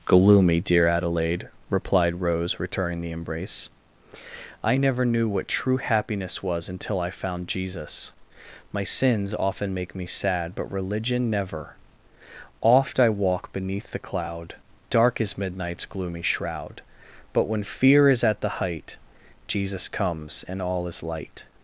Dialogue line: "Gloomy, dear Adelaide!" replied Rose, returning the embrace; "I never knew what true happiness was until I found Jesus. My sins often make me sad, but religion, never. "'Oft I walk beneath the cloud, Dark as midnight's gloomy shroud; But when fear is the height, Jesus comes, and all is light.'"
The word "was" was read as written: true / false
true